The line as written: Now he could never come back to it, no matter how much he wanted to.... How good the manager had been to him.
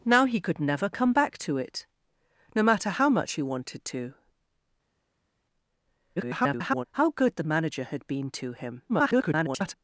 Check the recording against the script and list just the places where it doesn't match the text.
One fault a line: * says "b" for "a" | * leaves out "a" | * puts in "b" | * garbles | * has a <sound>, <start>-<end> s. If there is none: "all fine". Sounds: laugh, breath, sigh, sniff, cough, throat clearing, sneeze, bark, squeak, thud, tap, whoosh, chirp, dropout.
* garbles
* garbles